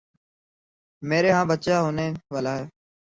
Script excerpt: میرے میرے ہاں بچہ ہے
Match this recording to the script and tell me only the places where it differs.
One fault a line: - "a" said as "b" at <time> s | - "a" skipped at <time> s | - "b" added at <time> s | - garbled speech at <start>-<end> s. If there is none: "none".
- "میرے" skipped at 1.3 s
- "ہونے والا" added at 1.8 s